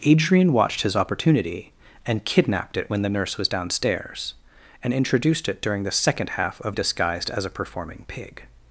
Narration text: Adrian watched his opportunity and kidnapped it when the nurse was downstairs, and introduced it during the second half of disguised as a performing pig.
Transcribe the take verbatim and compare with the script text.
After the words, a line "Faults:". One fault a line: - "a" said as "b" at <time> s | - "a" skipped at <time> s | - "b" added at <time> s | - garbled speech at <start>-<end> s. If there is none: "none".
Adrian watched his opportunity and kidnapped it when the nurse was downstairs, and introduced it during the second half of disguised as a performing pig.
Faults:
none